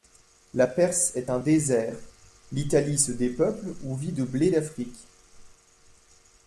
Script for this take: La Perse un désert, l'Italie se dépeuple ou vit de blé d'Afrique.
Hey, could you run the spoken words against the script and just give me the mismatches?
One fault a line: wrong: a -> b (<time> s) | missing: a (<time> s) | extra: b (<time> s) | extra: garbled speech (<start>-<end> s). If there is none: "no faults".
extra: est (1.2 s)